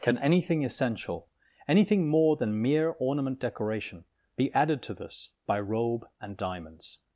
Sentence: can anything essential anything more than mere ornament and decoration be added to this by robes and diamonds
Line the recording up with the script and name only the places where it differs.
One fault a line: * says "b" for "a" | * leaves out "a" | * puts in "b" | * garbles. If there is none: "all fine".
* leaves out "and"
* says "robe" for "robes"